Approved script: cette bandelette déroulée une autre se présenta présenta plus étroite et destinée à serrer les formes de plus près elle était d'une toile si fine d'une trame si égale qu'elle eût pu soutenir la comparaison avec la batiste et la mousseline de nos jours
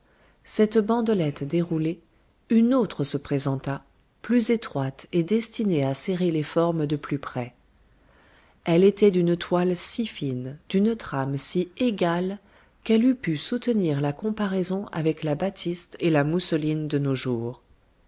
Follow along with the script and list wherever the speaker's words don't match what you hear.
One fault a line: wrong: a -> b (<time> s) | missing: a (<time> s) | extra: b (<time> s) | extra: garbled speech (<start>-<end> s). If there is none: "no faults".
missing: présenta (3.8 s)